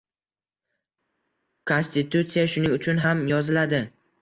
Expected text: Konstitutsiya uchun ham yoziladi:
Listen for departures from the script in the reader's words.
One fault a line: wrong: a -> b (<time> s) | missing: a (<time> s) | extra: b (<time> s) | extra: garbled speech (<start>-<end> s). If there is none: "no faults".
extra: shuning (2.6 s)